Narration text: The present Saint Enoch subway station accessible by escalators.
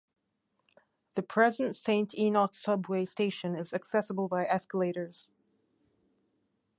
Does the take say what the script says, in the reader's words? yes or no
no